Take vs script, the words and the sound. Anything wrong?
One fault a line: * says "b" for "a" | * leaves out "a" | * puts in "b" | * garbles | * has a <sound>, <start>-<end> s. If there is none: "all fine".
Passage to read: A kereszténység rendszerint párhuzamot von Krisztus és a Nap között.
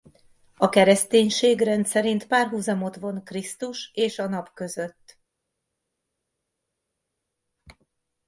all fine